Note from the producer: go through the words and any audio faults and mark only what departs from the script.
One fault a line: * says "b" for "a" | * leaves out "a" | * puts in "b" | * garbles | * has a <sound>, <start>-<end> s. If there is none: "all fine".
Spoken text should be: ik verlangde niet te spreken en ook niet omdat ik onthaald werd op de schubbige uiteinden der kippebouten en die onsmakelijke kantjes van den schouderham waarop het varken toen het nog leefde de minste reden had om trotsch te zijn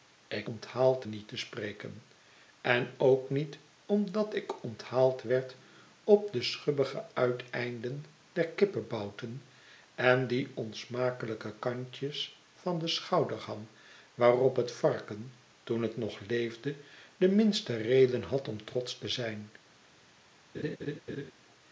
* says "onthaald" for "verlangde"
* has a laugh, 20.5-21.3 s